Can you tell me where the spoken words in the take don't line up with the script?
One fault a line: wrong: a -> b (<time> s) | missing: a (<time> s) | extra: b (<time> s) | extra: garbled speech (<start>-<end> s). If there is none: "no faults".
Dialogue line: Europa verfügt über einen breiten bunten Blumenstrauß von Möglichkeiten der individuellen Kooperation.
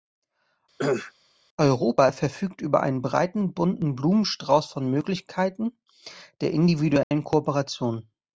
no faults